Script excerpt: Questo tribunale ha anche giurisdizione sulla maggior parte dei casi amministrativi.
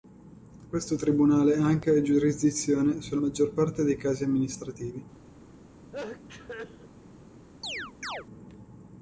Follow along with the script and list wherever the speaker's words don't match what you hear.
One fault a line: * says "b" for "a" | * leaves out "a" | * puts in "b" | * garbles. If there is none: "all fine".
all fine